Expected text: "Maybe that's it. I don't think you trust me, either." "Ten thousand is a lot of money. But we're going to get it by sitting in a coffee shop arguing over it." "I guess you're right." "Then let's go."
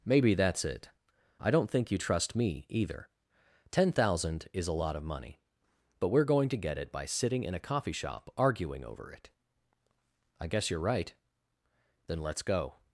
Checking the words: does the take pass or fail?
pass